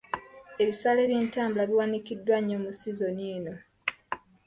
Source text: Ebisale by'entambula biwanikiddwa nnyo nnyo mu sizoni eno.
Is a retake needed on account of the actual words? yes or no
yes